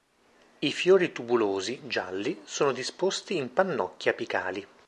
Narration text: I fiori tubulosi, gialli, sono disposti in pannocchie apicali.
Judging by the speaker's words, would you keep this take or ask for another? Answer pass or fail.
pass